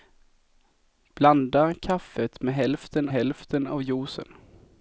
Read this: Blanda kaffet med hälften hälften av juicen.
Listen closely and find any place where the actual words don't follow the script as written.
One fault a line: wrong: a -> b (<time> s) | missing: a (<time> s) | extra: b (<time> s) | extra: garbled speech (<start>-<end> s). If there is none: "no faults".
no faults